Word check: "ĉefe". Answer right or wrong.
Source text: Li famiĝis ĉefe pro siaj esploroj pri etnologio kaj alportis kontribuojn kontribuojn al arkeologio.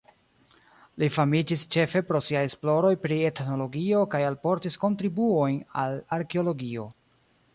right